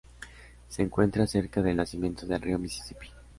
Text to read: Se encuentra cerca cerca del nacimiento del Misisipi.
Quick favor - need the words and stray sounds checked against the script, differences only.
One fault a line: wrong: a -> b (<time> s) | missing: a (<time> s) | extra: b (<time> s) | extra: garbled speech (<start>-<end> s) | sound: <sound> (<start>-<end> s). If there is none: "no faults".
missing: cerca (1.6 s)
extra: río (2.4 s)